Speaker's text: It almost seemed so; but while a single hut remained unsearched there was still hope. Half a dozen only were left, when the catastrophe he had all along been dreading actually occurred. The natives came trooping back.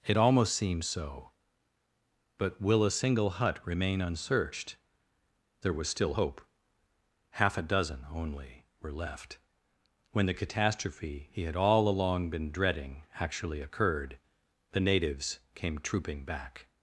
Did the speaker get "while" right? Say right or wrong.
wrong